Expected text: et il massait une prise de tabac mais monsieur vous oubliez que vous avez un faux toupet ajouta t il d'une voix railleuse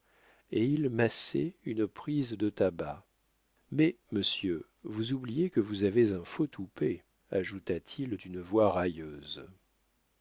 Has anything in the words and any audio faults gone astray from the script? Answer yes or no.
no